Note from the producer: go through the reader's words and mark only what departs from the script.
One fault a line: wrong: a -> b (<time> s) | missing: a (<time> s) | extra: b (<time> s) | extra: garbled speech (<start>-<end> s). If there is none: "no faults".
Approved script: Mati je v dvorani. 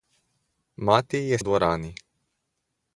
no faults